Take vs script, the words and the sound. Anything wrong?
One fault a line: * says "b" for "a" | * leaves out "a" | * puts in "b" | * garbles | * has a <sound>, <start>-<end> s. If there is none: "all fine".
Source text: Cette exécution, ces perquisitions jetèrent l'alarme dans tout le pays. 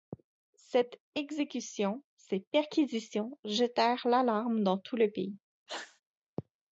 * has a sneeze, 5.7-6.0 s